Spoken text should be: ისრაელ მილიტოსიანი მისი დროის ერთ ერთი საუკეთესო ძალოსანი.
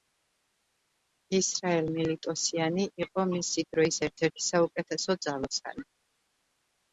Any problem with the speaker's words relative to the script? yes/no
yes